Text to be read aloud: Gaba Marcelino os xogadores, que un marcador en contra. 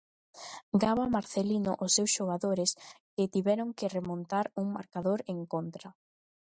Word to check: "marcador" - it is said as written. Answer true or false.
true